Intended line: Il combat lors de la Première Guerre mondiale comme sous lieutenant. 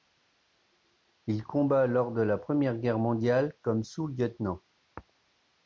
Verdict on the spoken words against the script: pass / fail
pass